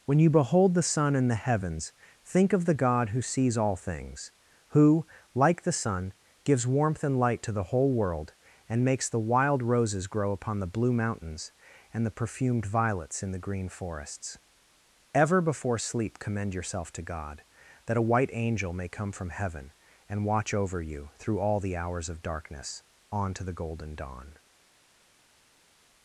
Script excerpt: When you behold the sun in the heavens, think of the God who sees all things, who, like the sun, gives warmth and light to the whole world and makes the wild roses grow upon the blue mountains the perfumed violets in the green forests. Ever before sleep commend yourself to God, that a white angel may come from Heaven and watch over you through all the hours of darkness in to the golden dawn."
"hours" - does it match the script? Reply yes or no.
yes